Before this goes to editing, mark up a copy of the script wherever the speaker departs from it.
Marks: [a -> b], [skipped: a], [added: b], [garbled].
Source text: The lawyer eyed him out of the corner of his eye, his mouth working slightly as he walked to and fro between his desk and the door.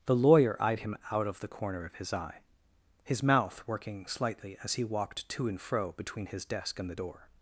The lawyer eyed him out of the corner of his eye, his mouth working slightly as he walked to and fro between his desk and the door.